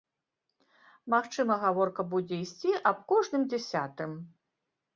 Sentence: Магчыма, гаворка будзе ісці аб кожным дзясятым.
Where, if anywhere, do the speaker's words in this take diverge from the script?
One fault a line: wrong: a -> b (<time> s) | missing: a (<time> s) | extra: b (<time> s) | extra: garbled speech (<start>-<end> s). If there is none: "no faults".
no faults